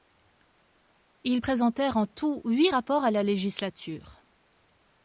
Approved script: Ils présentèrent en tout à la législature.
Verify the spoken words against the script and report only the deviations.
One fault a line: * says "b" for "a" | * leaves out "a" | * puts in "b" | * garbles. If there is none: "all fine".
* puts in "huit rapports"